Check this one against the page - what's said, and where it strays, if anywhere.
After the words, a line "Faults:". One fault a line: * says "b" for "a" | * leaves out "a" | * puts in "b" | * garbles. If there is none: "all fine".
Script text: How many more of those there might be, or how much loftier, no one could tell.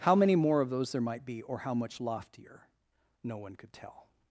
How many more of those there might be, or how much loftier, no one could tell.
Faults:
all fine